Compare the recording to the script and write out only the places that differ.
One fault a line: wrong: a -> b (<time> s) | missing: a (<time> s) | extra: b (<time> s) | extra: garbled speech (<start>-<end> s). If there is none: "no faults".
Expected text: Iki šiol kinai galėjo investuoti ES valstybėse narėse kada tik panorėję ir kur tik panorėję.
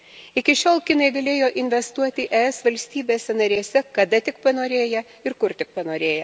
no faults